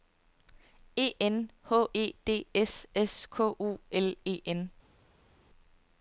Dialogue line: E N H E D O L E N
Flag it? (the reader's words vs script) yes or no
yes